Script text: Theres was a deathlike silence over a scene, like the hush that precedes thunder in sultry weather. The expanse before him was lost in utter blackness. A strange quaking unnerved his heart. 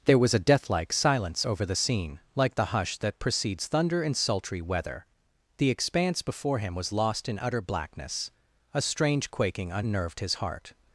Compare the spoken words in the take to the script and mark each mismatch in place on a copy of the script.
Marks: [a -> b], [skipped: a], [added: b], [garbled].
[Theres -> There] was a deathlike silence over [a -> the] scene, like the hush that precedes thunder in sultry weather. The expanse before him was lost in utter blackness. A strange quaking unnerved his heart.